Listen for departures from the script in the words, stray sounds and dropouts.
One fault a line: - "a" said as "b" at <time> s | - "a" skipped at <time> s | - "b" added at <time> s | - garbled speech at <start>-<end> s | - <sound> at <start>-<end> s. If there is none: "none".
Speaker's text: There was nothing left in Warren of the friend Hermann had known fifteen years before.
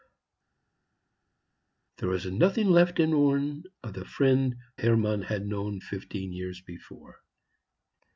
none